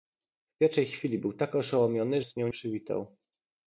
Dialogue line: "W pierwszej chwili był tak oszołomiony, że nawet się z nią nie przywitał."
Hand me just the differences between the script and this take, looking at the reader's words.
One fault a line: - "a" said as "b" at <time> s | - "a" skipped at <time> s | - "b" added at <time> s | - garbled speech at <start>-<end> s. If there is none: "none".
- "że nawet się" skipped at 2.2 s
- "nie" skipped at 2.5 s